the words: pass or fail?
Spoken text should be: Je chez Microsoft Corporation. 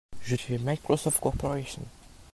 pass